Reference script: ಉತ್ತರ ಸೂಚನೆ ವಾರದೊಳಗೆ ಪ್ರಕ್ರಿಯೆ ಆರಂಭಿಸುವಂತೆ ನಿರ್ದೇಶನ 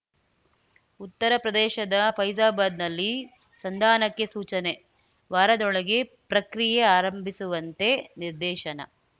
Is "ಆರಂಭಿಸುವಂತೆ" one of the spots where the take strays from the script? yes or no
no